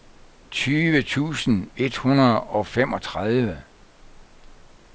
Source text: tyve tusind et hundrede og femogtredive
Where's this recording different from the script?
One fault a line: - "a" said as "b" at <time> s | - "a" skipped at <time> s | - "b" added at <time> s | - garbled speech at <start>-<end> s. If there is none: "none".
none